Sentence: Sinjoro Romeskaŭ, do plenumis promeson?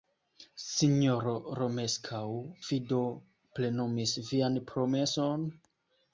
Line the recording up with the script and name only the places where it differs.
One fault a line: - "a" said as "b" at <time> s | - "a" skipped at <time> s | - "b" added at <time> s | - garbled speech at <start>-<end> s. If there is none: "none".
- "vi" added at 2.7 s
- "vian" added at 4.3 s